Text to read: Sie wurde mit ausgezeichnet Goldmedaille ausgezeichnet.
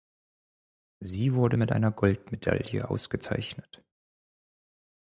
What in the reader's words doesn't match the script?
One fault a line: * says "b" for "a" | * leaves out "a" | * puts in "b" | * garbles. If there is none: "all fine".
* says "einer" for "ausgezeichnet"